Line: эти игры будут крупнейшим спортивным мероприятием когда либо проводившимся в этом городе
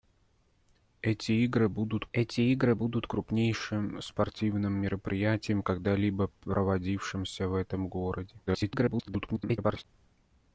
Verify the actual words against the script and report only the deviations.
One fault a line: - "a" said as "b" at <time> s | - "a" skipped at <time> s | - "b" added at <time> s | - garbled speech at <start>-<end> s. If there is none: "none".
- "эти игры будут" added at 2.1 s
- garbled speech at 8.5-9.8 s